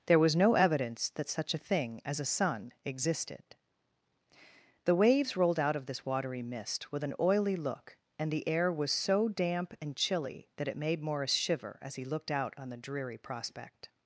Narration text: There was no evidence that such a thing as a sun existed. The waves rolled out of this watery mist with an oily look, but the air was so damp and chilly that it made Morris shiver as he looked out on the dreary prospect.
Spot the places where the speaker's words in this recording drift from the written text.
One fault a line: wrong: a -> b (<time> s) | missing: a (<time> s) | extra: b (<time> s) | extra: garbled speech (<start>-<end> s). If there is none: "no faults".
wrong: but -> and (8.2 s)